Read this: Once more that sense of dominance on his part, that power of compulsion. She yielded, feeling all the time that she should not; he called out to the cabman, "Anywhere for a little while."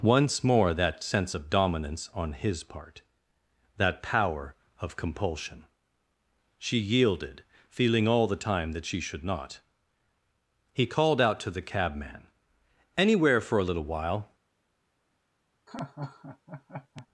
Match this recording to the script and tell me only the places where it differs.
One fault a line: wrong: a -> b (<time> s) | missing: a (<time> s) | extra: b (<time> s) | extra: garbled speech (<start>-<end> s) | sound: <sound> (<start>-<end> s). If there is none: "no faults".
sound: laugh (15.7-17.1 s)